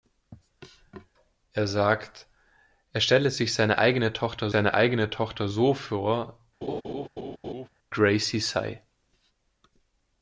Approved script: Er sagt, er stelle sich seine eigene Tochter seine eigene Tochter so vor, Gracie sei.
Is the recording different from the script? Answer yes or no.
no